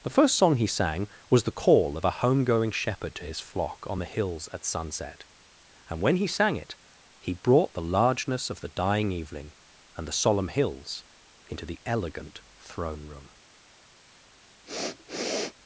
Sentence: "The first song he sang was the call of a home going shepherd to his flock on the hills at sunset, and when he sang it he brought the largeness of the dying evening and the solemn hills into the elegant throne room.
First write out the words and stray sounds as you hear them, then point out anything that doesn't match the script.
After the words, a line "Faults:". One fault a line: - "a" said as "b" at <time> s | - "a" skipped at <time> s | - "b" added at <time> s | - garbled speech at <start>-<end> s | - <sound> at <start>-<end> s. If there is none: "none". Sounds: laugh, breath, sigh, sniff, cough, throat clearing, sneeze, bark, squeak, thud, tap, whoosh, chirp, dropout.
"The first song he sang was the call of a home going shepherd to his flock on the hills at sunset, and when he sang it he brought the largeness of the dying evening and the solemn hills into the elegant throne room.
Faults:
- sniff at 14.7-15.5 s